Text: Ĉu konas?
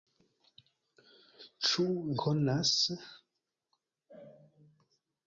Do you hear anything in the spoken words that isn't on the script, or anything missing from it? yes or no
no